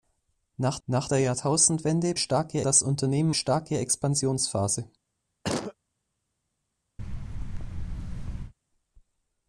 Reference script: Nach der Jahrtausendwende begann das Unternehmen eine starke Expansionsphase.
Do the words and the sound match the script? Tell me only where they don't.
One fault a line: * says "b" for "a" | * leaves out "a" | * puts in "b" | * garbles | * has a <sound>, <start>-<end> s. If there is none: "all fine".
* puts in "nach"
* says "starke" for "begann"
* leaves out "eine"
* has a cough, 5.4-5.7 s
* has a thud, 7.0-8.5 s